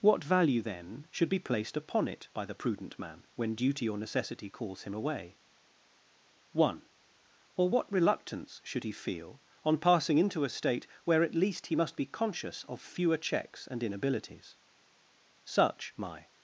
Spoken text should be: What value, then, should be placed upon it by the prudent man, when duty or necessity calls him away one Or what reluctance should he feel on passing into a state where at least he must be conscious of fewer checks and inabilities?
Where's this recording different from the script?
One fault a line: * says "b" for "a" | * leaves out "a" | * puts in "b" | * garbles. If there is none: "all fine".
* puts in "Such my"